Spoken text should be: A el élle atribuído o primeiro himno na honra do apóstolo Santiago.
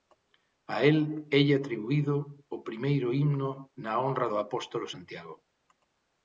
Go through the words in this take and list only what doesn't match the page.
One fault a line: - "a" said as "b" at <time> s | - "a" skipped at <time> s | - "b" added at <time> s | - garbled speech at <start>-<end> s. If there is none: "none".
none